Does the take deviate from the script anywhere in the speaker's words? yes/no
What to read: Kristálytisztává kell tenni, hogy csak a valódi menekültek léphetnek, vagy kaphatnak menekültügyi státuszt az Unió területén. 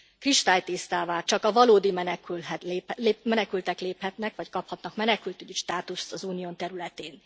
yes